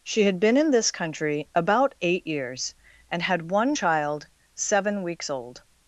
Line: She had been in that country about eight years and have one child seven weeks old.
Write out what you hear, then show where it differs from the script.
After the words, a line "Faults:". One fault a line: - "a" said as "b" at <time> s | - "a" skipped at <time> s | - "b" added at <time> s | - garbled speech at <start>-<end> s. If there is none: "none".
She had been in this country about eight years and had one child seven weeks old.
Faults:
- "that" said as "this" at 0.7 s
- "have" said as "had" at 3.2 s